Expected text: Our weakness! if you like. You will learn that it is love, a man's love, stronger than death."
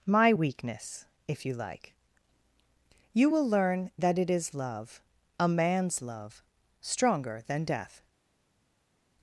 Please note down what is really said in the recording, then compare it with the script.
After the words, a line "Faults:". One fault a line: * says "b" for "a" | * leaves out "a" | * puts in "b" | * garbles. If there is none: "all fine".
My weakness! if you like. You will learn that it is love, a man's love, stronger than death."
Faults:
* says "My" for "Our"